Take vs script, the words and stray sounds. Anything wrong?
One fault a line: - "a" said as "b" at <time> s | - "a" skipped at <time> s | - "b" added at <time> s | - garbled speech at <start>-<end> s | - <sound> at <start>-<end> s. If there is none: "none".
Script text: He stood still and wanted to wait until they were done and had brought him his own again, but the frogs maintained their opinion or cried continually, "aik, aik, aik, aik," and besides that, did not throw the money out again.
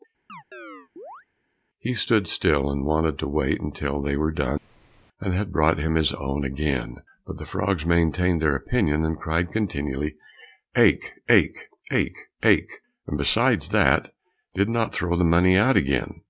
- chirp at 0.3-1.3 s
- "or" said as "and" at 9.1 s